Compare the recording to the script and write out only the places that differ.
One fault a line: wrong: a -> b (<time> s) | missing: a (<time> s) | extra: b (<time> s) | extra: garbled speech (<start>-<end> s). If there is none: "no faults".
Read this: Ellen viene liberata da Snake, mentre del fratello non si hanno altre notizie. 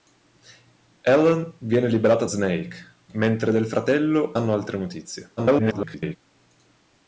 missing: da (2.2 s)
missing: non si (4.3 s)
extra: garbled speech (5.4-6.2 s)